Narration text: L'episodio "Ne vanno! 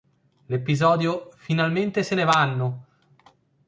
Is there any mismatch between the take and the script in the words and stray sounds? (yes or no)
yes